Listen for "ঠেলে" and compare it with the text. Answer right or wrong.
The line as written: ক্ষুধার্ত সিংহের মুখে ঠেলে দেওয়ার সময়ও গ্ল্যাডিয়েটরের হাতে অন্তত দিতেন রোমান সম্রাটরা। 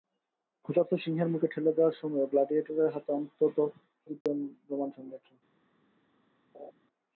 right